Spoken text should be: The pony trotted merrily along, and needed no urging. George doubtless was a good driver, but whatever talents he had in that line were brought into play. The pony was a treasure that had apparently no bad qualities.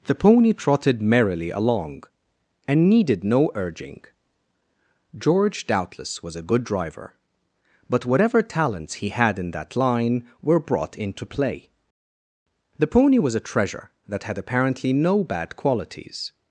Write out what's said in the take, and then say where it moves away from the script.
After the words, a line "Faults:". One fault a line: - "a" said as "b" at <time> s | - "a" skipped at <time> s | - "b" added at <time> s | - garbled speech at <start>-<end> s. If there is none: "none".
The pony trotted merrily along, and needed no urging. George doubtless was a good driver, but whatever talents he had in that line were brought into play. The pony was a treasure that had apparently no bad qualities.
Faults:
none